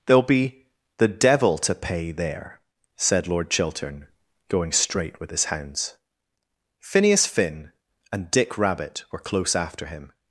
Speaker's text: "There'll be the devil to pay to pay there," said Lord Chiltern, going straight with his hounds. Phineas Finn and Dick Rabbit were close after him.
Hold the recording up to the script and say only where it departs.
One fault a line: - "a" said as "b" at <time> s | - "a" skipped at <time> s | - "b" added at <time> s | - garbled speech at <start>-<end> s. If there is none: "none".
- "to pay" skipped at 2.1 s